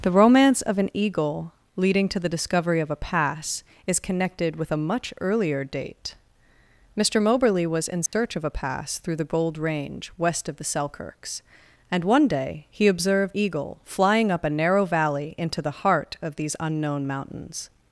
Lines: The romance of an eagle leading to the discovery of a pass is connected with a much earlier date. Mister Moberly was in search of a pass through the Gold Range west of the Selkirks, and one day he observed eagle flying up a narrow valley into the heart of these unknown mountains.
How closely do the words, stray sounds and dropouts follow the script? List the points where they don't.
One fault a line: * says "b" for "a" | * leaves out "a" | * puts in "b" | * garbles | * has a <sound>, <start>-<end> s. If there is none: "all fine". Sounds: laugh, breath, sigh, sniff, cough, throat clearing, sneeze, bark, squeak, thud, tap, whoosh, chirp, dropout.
* has a dropout, 8.1-8.1 s